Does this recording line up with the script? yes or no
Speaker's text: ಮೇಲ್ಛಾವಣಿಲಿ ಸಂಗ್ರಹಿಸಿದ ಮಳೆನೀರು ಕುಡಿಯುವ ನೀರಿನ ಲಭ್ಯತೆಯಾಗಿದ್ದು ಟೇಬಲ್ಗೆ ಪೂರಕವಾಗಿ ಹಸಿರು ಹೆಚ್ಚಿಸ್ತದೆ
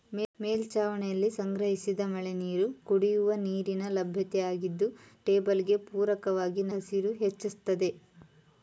yes